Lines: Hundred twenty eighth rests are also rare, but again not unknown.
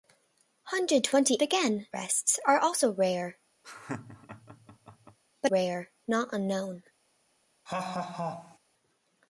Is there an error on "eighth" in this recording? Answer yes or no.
yes